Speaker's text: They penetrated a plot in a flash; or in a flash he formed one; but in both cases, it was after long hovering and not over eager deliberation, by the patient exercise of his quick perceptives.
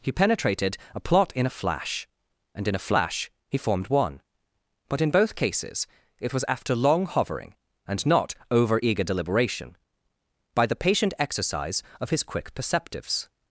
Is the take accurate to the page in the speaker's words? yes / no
no